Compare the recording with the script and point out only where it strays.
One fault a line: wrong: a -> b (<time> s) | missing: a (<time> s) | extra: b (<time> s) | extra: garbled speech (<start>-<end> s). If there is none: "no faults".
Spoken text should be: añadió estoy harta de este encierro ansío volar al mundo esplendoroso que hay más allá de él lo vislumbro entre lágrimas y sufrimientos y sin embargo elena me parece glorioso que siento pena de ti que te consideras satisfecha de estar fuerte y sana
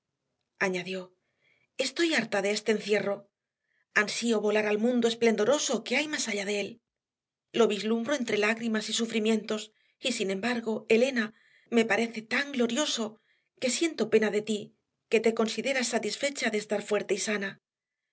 extra: tan (12.2 s)